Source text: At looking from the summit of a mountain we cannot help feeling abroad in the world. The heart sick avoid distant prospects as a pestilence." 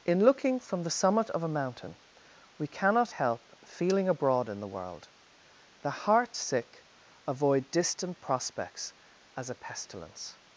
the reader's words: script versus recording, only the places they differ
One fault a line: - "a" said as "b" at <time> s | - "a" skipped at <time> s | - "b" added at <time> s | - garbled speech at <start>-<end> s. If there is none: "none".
- "At" said as "In" at 0.0 s